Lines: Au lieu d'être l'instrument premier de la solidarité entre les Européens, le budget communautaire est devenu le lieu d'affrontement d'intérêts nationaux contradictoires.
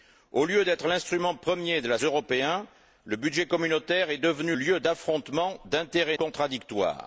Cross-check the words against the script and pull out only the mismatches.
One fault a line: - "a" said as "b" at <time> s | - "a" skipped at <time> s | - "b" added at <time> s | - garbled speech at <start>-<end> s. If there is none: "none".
- "solidarité entre les" skipped at 2.0 s
- "le" skipped at 4.6 s
- "nationaux" skipped at 6.2 s